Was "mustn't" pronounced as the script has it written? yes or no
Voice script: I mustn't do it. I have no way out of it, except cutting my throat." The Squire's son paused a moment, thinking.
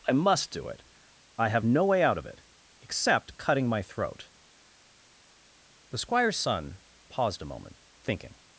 no